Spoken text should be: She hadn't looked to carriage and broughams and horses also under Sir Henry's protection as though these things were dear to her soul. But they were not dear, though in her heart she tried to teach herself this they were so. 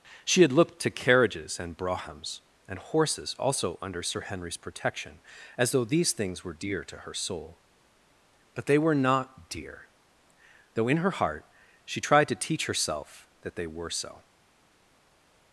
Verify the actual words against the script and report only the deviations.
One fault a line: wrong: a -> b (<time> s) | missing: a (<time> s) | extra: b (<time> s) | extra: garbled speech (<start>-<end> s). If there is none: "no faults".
wrong: hadn't -> had (0.4 s)
wrong: carriage -> carriages (0.9 s)
wrong: this -> that (13.4 s)